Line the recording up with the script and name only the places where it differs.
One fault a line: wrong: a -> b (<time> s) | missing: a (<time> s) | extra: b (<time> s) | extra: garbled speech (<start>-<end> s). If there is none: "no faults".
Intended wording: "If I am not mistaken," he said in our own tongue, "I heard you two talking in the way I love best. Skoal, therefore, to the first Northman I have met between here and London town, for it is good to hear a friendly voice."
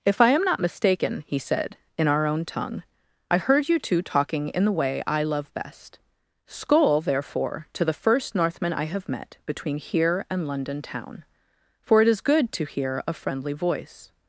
no faults